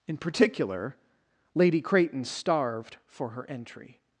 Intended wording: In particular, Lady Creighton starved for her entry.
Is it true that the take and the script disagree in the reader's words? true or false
false